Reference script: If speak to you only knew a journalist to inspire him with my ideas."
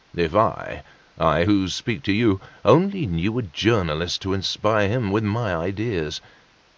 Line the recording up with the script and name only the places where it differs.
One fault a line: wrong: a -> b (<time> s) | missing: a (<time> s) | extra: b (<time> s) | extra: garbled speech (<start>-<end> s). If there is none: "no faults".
extra: I I who (0.3 s)